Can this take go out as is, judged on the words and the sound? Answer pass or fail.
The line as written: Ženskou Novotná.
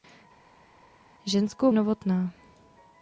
pass